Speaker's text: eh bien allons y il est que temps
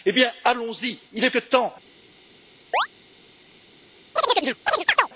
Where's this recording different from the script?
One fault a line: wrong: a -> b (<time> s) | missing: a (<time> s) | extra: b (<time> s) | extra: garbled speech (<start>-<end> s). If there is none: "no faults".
no faults